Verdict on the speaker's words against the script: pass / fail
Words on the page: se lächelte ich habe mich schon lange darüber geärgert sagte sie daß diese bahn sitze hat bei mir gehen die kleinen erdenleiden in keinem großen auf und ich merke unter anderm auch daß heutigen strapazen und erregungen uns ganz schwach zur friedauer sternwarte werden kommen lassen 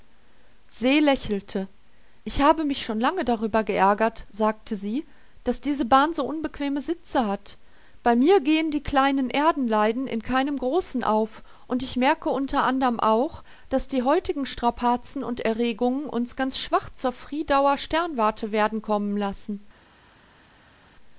fail